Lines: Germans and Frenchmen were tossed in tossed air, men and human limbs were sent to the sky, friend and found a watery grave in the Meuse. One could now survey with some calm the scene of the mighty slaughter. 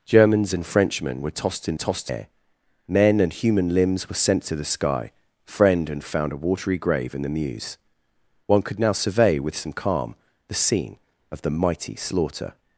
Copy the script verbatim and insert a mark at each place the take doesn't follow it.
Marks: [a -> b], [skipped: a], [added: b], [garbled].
Germans and Frenchmen were tossed in tossed air, men and human limbs were sent to the sky, friend and found a watery grave in the Meuse. One could now survey with some calm the scene of the mighty slaughter.